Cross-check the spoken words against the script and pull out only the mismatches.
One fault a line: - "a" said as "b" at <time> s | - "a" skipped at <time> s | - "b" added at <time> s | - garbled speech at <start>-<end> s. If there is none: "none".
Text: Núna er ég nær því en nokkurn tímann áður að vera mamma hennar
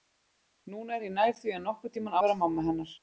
- "áður" skipped at 2.2 s